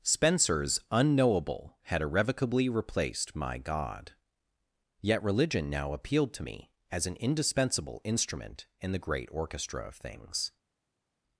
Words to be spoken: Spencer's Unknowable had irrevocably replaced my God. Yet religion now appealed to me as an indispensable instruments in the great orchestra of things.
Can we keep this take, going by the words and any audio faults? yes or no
no